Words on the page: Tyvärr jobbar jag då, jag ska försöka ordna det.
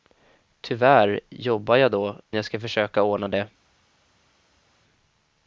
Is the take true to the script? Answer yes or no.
yes